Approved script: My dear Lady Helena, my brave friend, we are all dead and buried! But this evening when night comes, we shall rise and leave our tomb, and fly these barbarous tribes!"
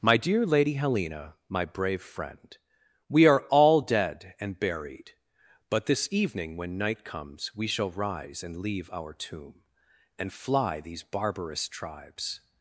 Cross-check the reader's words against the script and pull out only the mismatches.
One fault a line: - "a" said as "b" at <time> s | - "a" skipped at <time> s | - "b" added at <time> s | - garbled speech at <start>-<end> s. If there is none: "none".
none